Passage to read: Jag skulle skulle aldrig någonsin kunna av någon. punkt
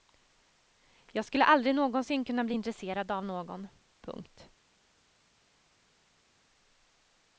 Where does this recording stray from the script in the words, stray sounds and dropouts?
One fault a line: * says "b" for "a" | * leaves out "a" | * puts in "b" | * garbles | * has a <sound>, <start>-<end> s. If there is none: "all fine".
* leaves out "skulle"
* puts in "bli intresserad"